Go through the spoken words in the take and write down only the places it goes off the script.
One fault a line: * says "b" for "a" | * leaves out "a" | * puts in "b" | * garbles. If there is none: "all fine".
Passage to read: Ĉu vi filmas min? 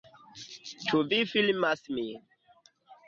all fine